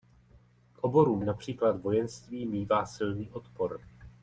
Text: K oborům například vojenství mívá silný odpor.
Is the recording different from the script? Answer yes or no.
no